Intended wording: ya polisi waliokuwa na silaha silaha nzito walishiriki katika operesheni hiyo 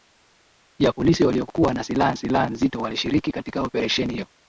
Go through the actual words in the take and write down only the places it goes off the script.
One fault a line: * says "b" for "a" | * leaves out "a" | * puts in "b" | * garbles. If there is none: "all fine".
all fine